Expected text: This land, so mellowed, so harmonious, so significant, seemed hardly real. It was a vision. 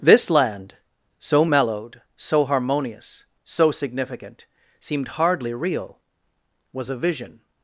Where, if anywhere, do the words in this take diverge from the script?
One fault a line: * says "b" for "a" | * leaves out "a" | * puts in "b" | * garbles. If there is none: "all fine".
* leaves out "It"